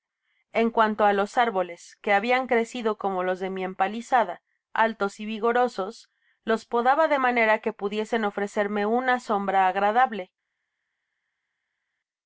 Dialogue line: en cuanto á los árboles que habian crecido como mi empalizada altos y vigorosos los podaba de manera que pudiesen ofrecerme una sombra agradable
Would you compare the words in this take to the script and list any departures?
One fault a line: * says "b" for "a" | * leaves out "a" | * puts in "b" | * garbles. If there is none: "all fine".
* puts in "los de"